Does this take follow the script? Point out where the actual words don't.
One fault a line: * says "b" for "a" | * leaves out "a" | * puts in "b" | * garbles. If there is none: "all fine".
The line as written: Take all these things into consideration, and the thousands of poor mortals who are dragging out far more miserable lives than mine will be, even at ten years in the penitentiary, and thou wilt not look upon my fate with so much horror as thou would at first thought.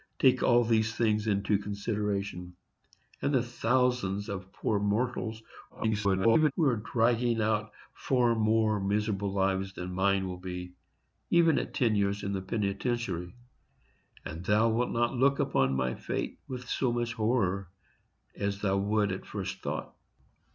* garbles